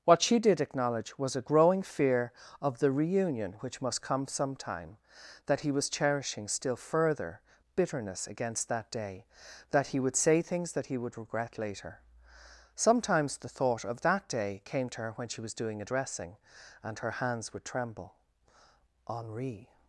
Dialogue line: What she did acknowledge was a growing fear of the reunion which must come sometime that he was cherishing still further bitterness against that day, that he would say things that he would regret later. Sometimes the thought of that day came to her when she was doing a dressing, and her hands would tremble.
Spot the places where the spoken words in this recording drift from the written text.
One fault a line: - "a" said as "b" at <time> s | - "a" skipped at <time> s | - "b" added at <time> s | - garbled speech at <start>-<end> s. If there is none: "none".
- "Henri" added at 19.1 s